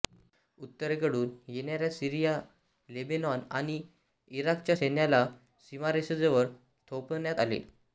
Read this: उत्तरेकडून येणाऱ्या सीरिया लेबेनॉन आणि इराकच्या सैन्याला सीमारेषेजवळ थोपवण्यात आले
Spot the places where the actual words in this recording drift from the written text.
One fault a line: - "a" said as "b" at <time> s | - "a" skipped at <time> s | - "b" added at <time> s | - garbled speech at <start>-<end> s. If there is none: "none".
none